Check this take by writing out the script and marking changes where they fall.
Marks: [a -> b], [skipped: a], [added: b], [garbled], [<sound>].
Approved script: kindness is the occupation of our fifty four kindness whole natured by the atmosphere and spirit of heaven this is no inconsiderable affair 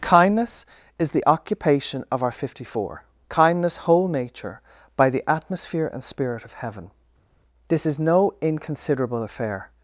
kindness is the occupation of our fifty four kindness whole [natured -> nature] by the atmosphere and spirit of heaven this is no inconsiderable affair